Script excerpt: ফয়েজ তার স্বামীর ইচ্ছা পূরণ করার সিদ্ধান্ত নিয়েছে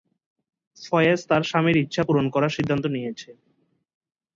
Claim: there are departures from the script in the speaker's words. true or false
false